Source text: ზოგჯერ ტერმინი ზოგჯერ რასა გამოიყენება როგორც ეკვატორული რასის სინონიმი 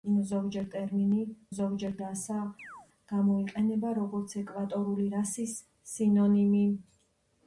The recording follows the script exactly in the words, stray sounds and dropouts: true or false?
false